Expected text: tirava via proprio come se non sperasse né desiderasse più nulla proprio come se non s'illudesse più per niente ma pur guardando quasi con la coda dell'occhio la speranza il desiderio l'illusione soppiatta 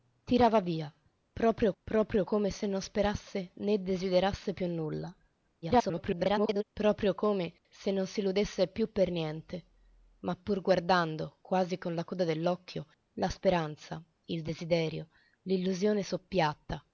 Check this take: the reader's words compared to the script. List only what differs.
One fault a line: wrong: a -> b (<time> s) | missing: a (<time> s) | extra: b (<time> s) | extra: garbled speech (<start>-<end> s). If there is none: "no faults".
extra: proprio (1.8 s)
extra: garbled speech (5.6-6.6 s)